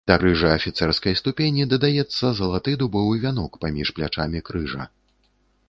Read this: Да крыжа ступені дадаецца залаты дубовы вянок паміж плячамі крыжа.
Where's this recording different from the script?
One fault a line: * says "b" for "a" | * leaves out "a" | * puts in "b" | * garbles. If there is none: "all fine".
* puts in "афіцэрскай"